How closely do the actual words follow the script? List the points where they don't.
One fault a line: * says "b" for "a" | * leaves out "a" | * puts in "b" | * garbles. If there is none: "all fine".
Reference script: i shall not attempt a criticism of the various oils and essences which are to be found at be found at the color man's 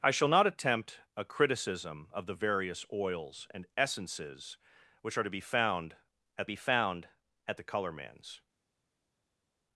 all fine